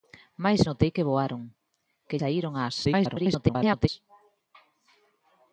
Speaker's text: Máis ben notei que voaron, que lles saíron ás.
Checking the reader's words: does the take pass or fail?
fail